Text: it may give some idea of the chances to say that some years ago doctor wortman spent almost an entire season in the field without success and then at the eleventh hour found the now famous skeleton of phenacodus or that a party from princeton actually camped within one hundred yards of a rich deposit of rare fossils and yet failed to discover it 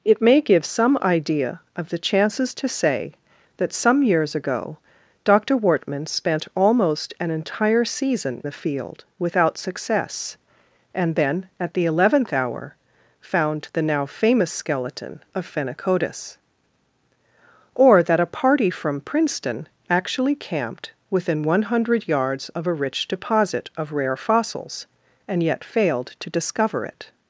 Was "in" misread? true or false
true